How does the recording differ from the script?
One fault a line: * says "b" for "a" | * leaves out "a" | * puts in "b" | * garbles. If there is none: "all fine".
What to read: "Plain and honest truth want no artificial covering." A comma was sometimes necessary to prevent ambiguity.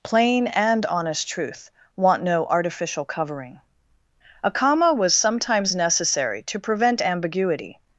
all fine